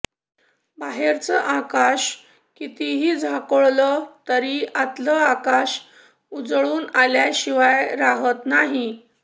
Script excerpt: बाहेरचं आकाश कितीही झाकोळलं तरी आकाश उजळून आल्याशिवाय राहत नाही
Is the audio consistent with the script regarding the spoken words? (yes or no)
no